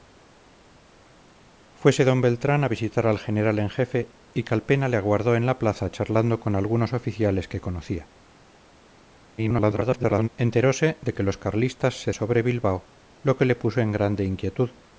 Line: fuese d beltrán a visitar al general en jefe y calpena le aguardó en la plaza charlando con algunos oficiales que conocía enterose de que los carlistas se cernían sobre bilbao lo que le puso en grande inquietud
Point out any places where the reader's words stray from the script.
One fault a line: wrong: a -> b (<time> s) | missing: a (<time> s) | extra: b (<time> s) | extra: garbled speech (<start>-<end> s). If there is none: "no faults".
extra: garbled speech (9.4-10.3 s)
missing: cernían (12.1 s)